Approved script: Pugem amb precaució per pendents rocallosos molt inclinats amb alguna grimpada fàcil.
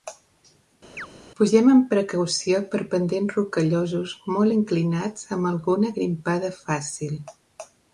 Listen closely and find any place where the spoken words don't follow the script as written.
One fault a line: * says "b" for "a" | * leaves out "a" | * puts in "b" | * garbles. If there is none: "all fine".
all fine